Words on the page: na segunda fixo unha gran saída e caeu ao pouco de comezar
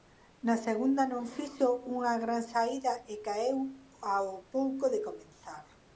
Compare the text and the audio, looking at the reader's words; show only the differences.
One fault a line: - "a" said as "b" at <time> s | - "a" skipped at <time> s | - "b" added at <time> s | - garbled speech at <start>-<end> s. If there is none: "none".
- "non" added at 1.1 s